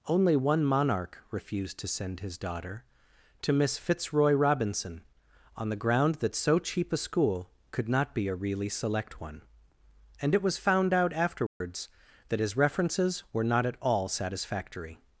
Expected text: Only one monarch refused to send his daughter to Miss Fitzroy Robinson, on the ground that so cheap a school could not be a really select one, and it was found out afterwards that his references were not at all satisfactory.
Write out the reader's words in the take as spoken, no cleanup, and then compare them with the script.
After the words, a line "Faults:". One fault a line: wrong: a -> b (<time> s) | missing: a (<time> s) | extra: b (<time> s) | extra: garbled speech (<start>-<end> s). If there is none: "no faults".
Only one monarch refused to send his daughter to Miss Fitzroy Robinson, on the ground that so cheap a school could not be a really select one, and it was found out afterwards that his references were not at all satisfactory.
Faults:
no faults